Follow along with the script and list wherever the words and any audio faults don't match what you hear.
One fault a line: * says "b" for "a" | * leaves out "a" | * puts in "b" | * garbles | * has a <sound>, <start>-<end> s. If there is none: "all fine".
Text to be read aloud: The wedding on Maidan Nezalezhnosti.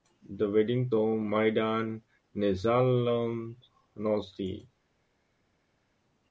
all fine